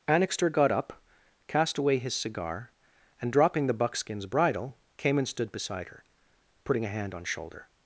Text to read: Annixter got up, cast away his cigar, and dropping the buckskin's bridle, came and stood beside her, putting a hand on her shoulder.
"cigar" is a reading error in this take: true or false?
false